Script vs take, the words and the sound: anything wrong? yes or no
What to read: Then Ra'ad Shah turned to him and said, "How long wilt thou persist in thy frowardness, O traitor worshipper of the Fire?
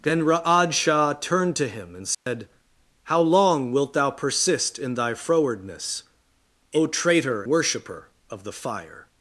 yes